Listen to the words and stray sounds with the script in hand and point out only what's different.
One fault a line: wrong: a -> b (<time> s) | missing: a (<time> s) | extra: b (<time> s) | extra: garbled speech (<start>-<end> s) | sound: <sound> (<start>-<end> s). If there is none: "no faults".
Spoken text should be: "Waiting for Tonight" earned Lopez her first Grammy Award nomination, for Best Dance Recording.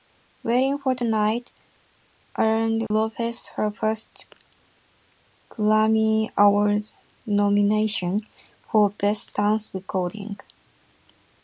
sound: dropout (2.9-2.9 s)